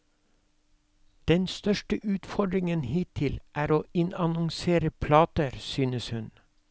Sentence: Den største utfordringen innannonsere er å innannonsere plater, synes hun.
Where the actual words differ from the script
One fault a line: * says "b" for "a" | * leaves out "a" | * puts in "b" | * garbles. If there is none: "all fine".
* says "hittil" for "innannonsere"